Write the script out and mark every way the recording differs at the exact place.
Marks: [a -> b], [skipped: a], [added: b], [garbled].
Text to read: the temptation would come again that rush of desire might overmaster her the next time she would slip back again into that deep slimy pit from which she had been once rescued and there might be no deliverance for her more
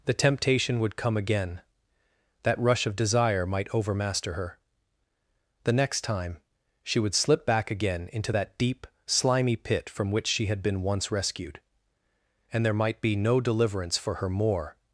the temptation would come again that rush of desire might overmaster her the next time she would slip back again into that deep slimy pit from which she had been once rescued and there might be no deliverance for her more